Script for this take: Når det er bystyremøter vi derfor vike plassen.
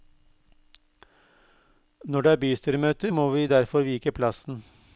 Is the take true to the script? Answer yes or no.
no